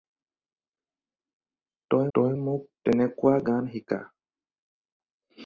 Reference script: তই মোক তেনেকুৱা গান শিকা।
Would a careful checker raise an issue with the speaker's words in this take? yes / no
yes